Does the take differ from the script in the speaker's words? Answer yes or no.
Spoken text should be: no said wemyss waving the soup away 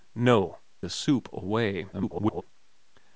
yes